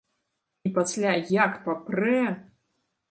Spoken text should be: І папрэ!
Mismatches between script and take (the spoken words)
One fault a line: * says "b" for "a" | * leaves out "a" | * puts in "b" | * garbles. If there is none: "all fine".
* puts in "пасля як"